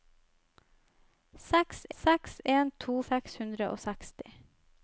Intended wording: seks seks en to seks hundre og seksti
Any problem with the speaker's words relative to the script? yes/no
no